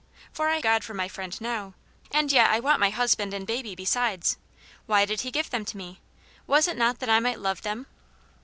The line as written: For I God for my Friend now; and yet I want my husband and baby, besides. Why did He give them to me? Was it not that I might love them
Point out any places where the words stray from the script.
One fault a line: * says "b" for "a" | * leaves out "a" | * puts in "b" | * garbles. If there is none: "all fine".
all fine